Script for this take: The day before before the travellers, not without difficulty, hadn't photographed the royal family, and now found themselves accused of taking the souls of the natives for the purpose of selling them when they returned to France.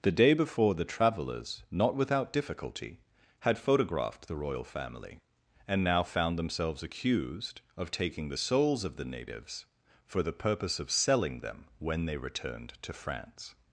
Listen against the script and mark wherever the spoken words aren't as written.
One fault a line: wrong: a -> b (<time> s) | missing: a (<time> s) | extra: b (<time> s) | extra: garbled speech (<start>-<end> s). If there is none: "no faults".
missing: before (0.7 s)
wrong: hadn't -> had (3.4 s)